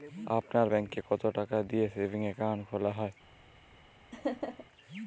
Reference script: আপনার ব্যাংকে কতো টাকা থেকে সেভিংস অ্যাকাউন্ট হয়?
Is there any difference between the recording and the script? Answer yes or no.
yes